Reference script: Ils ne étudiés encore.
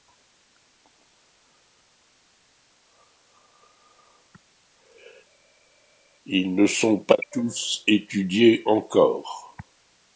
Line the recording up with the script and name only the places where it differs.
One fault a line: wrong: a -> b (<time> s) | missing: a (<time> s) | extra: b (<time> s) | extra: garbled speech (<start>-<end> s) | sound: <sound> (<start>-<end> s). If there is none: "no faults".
extra: sont pas tous (6.7 s)